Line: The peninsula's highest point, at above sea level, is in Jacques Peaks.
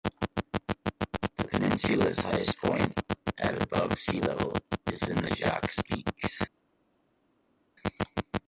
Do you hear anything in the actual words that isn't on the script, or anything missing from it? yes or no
yes